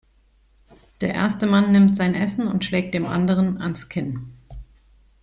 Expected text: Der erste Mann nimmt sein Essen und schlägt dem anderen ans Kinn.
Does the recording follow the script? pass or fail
pass